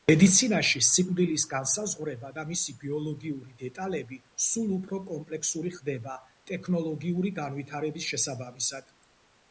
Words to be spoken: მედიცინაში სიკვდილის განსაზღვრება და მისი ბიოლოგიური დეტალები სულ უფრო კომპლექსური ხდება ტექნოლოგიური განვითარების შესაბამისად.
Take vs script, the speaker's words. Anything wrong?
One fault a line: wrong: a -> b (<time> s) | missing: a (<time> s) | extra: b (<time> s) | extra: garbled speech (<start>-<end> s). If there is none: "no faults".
no faults